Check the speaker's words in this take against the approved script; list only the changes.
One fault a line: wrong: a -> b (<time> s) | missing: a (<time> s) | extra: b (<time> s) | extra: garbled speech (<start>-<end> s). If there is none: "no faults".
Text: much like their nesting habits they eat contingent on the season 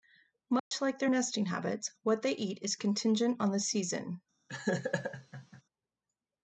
extra: what (2.0 s)
extra: is (2.6 s)